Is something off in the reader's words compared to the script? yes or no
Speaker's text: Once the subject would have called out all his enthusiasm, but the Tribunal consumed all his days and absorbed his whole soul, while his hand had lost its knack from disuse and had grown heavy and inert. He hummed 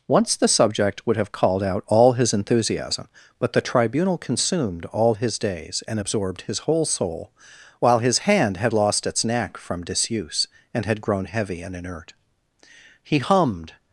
no